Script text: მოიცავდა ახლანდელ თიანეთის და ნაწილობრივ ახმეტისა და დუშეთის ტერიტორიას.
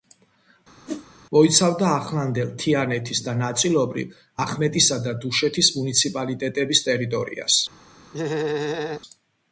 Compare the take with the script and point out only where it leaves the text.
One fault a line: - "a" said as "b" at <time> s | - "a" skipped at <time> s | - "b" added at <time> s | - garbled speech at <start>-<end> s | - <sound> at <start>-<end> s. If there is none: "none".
- whoosh at 0.9-1.1 s
- "მუნიციპალიტეტების" added at 5.8 s
- laugh at 8.1-9.0 s